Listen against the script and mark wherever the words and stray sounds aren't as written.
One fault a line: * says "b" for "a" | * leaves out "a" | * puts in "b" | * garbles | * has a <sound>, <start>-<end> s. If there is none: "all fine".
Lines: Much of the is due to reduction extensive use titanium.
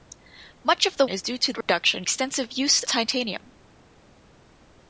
* has a dropout, 1.6-1.7 s